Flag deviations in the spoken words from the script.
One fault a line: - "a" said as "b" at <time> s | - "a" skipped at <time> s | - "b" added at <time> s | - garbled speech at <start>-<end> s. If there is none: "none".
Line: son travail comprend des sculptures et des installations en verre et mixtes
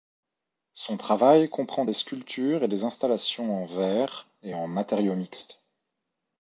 - "en matériaux" added at 4.5 s